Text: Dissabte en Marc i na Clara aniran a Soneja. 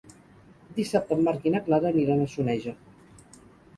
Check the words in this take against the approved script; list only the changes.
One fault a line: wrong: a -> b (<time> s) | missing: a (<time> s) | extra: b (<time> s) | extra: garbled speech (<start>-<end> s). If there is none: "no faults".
no faults